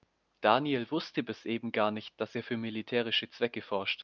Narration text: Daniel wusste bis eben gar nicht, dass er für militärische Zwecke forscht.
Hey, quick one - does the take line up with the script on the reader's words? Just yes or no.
yes